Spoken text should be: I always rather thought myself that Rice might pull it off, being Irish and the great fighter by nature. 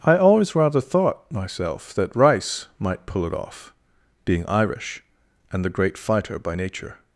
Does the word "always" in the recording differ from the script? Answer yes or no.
no